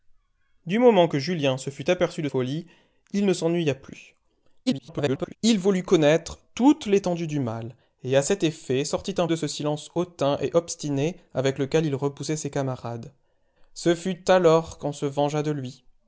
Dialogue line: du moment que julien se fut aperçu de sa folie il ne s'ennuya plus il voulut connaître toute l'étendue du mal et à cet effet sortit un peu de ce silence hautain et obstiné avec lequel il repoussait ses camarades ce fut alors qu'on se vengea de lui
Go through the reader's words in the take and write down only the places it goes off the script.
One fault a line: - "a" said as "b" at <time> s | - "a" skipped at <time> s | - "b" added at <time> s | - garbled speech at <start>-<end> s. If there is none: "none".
- "sa" skipped at 2.3 s
- garbled speech at 4.7-5.4 s
- "peu" skipped at 9.3 s